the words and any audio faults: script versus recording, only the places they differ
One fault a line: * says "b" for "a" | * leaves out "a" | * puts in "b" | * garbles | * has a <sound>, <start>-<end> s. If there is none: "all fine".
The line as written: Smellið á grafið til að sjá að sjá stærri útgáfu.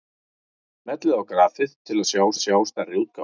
all fine